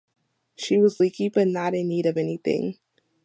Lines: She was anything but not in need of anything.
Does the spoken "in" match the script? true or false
true